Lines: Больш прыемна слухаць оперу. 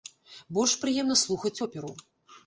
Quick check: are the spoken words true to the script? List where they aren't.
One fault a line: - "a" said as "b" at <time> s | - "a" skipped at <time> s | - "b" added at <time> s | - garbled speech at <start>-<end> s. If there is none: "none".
none